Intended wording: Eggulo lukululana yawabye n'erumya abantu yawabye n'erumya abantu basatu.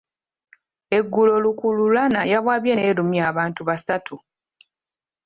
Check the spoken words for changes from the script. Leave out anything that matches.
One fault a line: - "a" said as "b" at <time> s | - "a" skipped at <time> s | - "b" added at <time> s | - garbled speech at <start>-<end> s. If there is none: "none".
- "yawabye n'erumya abantu" skipped at 3.6 s